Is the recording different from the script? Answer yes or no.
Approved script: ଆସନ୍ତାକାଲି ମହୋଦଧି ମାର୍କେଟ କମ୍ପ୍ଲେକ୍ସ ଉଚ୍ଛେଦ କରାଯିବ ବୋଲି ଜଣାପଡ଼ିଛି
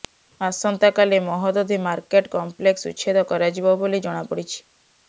no